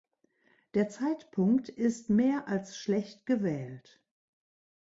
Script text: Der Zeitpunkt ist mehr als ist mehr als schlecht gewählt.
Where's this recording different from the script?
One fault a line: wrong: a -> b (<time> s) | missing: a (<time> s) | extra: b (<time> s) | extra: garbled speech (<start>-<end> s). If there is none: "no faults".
missing: ist mehr als (2.8 s)